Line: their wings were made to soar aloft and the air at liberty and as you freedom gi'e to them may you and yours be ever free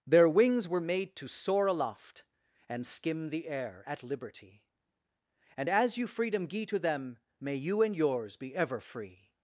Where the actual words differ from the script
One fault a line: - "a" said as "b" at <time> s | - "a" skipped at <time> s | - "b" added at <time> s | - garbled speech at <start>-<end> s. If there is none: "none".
- "skim" added at 2.9 s